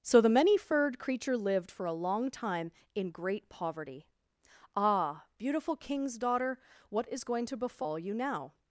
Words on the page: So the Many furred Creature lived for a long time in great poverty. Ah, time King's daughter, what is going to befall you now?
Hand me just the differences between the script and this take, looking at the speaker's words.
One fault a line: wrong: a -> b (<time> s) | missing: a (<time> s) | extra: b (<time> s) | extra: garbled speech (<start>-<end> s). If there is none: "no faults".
wrong: time -> beautiful (5.4 s)